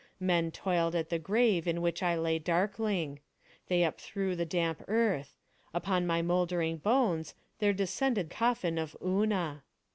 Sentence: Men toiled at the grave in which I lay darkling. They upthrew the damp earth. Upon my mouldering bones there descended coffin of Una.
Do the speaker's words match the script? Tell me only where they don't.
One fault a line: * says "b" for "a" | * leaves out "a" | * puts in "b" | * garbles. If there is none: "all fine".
all fine